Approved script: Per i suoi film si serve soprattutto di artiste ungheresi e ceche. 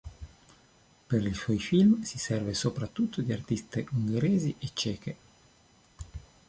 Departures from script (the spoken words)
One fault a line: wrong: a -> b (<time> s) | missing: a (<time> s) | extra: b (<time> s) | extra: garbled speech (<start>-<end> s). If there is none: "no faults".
no faults